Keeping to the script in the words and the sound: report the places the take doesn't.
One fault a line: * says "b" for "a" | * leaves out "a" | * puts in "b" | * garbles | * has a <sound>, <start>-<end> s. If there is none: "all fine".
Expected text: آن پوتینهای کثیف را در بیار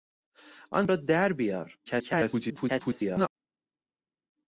* leaves out "پوتینهای کثیف"
* garbles